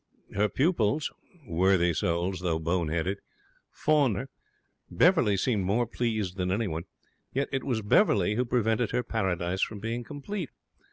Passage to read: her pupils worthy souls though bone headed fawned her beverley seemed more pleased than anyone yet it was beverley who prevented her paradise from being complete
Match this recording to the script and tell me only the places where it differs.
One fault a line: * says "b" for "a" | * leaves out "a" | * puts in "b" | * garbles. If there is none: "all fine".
all fine